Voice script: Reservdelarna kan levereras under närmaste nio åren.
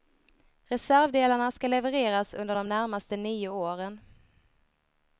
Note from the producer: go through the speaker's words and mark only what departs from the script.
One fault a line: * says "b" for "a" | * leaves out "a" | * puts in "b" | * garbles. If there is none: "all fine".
* says "ska" for "kan"
* puts in "de"